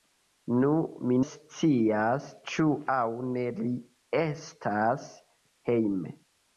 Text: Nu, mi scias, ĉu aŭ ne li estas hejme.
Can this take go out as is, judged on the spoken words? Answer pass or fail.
pass